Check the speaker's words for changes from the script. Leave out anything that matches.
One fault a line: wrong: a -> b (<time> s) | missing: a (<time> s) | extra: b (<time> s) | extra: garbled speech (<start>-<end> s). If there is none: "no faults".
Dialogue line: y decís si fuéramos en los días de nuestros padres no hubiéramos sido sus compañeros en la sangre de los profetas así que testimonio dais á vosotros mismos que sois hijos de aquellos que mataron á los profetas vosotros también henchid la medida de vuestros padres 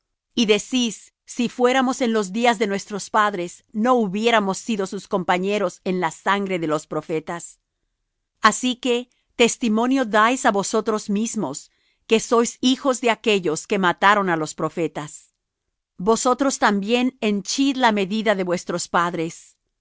no faults